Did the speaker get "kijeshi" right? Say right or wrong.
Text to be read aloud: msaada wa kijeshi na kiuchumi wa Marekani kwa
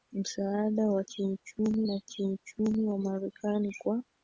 wrong